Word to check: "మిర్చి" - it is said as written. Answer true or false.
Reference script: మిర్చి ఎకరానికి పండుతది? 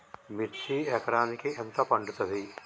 true